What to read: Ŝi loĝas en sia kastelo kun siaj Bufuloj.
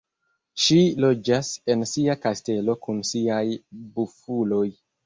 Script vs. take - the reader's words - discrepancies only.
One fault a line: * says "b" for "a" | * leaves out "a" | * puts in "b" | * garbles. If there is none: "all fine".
all fine